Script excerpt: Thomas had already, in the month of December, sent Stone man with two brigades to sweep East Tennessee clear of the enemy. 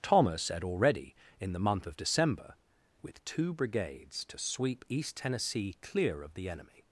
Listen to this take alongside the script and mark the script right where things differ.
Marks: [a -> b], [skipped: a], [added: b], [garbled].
Thomas had already, in the month of December, [skipped: sent Stone man] with two brigades to sweep East Tennessee clear of the enemy.